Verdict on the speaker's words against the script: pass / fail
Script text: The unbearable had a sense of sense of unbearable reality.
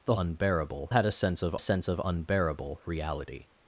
pass